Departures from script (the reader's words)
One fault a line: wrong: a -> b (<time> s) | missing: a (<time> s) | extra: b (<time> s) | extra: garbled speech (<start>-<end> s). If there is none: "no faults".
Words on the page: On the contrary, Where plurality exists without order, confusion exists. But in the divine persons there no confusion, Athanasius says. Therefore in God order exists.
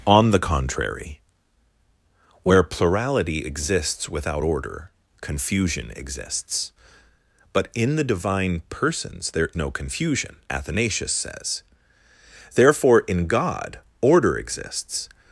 no faults